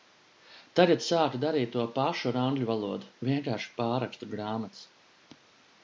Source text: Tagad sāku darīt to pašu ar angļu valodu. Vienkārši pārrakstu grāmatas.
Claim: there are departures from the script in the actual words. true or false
false